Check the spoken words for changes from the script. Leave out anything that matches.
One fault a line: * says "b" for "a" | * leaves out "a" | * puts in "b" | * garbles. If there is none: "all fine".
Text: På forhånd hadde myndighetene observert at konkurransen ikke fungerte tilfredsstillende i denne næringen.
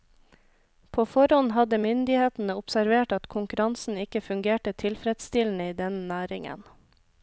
all fine